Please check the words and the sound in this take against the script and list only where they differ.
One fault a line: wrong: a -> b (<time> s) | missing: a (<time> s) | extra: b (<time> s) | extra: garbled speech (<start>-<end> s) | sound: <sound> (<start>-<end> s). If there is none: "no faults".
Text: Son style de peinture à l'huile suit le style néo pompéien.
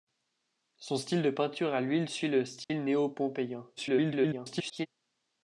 sound: dropout (2.6-2.7 s)
extra: garbled speech (3.8-4.9 s)